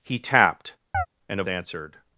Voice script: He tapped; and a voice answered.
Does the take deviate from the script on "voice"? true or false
true